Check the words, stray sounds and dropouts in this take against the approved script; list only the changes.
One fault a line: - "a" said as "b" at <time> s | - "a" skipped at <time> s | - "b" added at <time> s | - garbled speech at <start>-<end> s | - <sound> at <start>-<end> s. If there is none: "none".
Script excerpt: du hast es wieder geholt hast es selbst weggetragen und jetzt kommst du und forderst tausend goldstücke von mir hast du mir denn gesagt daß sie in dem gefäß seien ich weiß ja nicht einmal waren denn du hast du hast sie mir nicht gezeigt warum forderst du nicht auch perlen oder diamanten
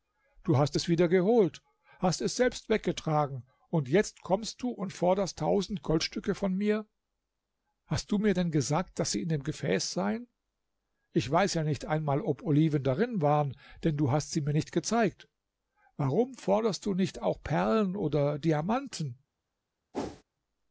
- "ob oliven darin" added at 12.2 s
- "du hast" skipped at 14.3 s
- whoosh at 19.9-20.2 s